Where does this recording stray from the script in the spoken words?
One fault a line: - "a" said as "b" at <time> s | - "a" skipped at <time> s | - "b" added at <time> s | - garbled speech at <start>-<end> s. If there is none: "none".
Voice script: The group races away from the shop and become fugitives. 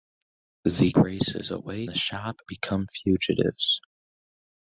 - "group" skipped at 0.9 s
- "from" skipped at 1.9 s
- "and" skipped at 2.4 s